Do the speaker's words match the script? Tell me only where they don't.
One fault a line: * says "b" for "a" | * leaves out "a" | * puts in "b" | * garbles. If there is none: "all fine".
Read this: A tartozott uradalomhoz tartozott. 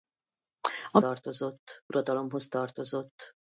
all fine